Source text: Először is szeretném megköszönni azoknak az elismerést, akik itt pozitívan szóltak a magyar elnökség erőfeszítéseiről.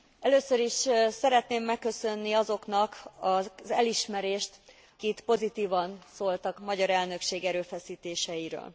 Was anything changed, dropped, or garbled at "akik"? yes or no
yes